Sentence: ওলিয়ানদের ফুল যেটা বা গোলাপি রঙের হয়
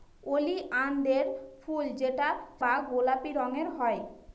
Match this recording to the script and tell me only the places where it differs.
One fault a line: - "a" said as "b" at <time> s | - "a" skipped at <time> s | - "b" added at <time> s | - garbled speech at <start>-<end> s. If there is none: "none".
none